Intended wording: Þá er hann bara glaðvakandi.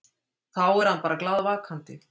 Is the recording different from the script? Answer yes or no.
no